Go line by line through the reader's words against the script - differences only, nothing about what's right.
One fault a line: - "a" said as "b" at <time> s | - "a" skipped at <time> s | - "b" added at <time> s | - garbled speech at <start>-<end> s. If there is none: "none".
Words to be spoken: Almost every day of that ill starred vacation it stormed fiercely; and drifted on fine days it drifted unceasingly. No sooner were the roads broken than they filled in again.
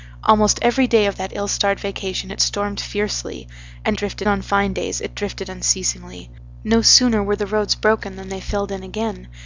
none